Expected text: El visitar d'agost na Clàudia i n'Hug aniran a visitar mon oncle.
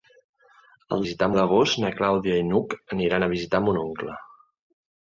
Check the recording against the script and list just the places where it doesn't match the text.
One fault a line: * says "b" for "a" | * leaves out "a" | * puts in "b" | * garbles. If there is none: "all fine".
all fine